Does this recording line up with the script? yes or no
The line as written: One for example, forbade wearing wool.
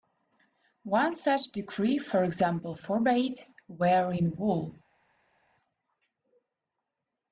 no